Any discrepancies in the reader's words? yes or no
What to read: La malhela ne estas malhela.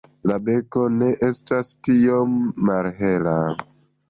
yes